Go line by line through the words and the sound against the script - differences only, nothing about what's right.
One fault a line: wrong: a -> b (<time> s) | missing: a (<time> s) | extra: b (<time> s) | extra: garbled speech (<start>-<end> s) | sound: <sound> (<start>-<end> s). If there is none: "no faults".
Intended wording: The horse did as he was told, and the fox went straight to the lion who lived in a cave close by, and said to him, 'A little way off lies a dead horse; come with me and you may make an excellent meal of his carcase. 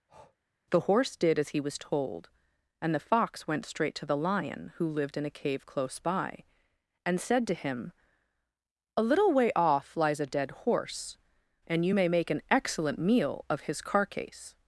sound: breath (0.1-0.4 s)
missing: come with me (11.2 s)